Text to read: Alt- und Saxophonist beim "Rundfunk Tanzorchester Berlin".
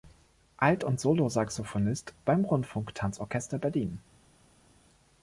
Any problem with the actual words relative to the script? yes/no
yes